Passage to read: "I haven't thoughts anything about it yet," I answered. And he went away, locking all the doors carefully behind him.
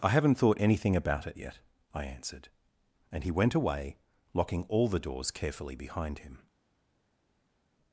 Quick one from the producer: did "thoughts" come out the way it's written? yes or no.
no